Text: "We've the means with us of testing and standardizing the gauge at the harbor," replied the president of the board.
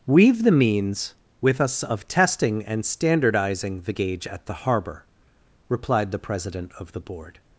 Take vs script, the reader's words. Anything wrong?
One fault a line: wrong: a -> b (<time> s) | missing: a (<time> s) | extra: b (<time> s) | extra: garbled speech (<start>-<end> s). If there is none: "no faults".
no faults